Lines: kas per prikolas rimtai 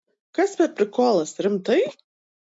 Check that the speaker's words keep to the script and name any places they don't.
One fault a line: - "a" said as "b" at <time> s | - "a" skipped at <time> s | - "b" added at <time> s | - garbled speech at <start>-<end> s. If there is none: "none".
none